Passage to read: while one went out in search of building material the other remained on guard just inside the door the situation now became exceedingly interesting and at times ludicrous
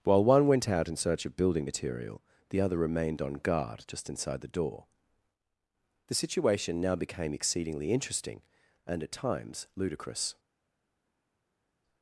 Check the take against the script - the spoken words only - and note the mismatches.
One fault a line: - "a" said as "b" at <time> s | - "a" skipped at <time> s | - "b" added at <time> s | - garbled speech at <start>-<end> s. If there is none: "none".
none